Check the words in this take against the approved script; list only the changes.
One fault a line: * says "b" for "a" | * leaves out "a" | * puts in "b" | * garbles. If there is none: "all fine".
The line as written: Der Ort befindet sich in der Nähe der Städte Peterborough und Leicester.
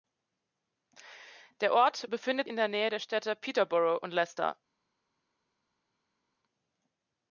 * leaves out "sich"